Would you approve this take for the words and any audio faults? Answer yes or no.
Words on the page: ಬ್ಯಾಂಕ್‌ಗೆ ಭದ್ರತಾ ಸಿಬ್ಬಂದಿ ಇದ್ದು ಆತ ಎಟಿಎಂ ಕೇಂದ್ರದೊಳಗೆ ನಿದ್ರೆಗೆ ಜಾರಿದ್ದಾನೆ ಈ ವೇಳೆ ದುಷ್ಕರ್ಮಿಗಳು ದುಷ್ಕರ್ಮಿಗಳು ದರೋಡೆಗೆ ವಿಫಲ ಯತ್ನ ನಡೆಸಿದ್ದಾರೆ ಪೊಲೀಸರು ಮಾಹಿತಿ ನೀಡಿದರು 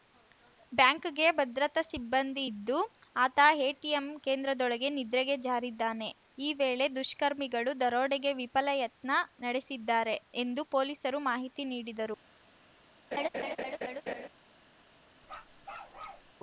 no